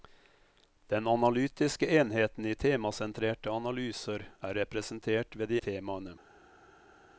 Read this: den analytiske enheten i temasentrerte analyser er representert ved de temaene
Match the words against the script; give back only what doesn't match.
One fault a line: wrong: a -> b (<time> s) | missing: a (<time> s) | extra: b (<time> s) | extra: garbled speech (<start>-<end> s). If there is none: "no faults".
no faults